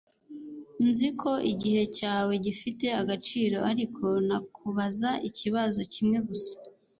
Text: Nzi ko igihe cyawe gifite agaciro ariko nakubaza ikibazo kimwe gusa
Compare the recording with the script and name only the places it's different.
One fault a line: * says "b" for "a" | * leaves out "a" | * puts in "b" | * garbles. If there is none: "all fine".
all fine